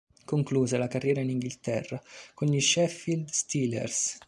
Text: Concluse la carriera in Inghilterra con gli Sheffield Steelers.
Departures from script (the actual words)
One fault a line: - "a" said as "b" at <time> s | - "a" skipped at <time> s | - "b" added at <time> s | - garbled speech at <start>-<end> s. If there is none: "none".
none